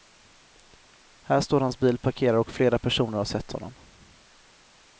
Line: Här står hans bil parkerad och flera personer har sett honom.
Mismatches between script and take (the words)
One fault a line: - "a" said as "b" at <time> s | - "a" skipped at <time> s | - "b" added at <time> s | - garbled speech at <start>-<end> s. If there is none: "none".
none